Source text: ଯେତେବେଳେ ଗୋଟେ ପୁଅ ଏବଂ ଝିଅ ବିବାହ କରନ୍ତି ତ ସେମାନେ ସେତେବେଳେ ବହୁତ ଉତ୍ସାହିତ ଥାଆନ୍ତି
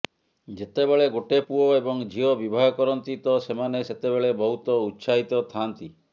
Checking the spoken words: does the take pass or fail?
pass